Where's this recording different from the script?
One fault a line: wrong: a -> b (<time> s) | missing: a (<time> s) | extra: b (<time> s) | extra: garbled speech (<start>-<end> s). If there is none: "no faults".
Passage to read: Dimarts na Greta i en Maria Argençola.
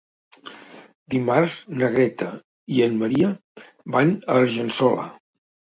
extra: van a (4.0 s)